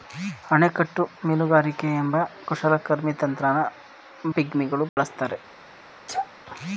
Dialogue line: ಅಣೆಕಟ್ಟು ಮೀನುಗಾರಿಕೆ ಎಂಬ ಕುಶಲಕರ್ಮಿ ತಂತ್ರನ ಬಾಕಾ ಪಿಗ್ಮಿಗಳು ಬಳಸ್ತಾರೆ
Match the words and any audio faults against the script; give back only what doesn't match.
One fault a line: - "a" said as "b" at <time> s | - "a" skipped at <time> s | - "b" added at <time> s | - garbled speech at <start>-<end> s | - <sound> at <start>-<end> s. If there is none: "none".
- "ಬಾಕಾ" skipped at 3.6 s
- dropout at 4.9-5.0 s
- sneeze at 6.1-6.3 s